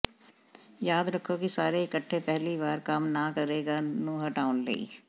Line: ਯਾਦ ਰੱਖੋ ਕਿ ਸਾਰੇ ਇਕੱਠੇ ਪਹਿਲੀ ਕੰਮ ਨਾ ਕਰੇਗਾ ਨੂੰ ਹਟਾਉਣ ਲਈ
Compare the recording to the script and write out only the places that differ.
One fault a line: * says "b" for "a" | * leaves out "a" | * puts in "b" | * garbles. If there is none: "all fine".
* puts in "ਵਾਰ"